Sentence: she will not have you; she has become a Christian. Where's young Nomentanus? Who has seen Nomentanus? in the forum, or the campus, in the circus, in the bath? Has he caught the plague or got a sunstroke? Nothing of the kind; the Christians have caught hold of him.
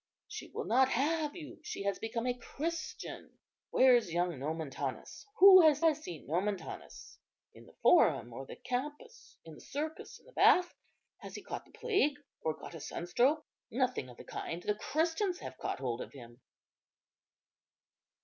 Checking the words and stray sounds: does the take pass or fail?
fail